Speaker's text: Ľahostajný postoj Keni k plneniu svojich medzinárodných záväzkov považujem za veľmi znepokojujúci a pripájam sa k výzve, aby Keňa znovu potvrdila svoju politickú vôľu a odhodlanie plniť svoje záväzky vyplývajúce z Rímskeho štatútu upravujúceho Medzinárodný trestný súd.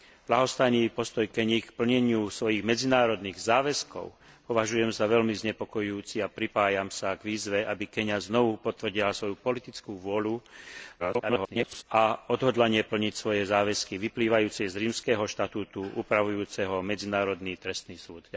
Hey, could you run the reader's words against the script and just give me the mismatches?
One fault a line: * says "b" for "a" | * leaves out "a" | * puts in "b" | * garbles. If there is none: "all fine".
* garbles